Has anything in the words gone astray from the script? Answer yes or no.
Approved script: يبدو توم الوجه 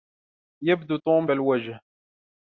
no